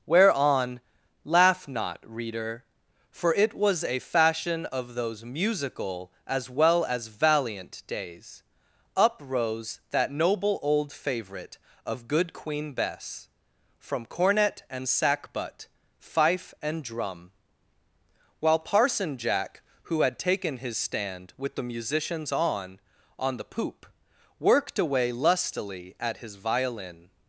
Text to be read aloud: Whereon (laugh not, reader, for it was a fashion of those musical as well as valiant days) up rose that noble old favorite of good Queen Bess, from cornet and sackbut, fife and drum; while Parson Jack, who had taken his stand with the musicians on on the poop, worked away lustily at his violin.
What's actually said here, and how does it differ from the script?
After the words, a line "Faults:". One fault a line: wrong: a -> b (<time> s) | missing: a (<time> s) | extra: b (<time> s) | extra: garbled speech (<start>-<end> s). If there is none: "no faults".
Whereon (laugh not, reader, for it was a fashion of those musical as well as valiant days) up rose that noble old favorite of good Queen Bess, from cornet and sackbut, fife and drum; while Parson Jack, who had taken his stand with the musicians on on the poop, worked away lustily at his violin.
Faults:
no faults